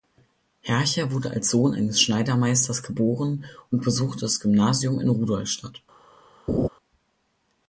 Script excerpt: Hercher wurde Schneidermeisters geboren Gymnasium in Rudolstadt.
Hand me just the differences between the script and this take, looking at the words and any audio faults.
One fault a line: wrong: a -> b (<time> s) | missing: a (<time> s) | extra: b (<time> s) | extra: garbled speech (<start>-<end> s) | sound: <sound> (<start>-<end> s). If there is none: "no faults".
extra: als Sohn eines (1.3 s)
extra: und besuchte das (3.7 s)
sound: laugh (6.5-6.7 s)